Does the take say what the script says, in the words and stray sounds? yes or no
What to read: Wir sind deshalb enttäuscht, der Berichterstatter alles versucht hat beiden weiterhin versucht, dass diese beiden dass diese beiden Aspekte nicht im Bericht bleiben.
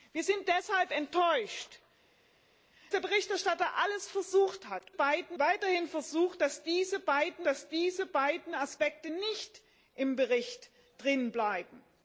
yes